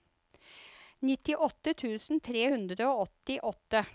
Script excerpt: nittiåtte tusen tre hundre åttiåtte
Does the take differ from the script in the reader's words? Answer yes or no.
yes